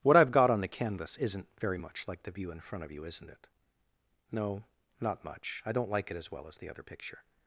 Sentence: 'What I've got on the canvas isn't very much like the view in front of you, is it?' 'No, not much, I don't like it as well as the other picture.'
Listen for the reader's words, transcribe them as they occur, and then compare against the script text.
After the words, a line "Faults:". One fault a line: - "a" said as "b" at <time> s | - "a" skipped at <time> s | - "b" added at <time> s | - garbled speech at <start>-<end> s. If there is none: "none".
'What I've got on the canvas isn't very much like the view in front of you, isn't it?' 'No, not much, I don't like it as well as the other picture.'
Faults:
- "is" said as "isn't" at 3.0 s